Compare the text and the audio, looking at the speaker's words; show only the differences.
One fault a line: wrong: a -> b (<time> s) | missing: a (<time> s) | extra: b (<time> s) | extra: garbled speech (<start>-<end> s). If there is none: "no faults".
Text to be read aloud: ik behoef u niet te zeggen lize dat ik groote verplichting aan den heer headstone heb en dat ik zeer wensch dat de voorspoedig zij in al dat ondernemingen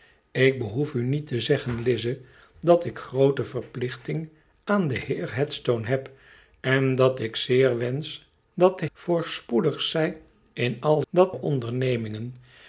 no faults